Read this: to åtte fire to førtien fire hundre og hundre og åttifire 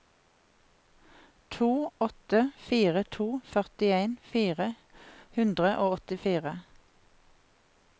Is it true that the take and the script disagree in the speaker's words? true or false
true